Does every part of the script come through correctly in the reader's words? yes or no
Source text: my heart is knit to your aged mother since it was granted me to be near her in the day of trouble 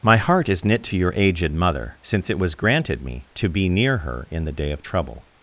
yes